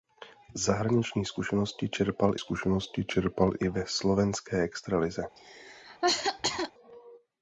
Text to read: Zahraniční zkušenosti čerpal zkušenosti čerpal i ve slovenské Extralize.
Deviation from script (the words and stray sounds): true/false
true